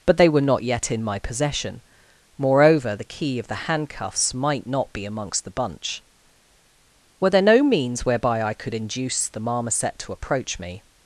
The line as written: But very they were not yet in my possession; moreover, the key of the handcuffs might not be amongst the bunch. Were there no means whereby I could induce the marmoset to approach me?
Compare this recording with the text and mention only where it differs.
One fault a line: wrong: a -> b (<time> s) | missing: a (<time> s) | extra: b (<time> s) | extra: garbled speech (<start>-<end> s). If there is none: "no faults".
missing: very (0.2 s)